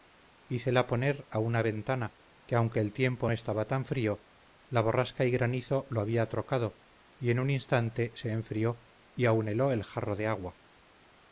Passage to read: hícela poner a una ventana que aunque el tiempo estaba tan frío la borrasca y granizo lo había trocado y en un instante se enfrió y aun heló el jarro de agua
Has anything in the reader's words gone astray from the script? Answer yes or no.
no